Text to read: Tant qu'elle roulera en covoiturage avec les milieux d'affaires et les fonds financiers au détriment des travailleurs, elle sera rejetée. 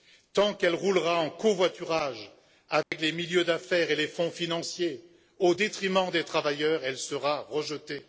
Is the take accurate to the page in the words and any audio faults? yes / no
no